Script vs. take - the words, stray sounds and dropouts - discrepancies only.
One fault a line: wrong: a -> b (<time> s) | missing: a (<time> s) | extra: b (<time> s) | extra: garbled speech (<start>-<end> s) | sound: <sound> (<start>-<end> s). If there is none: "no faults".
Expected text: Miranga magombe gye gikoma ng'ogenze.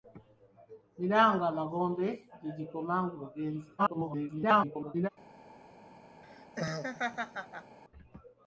extra: garbled speech (3.8-5.1 s)
sound: laugh (6.2-7.8 s)